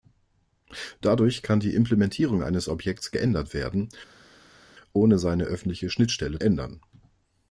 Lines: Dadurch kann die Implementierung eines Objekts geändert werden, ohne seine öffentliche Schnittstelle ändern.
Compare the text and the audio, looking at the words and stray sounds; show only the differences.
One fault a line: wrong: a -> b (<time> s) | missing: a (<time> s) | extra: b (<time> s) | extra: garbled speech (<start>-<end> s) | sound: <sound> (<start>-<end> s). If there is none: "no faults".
no faults